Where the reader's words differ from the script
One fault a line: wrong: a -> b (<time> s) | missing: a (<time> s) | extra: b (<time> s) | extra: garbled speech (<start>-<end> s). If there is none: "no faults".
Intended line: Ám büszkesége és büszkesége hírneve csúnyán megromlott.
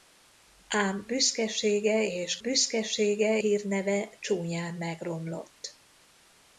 no faults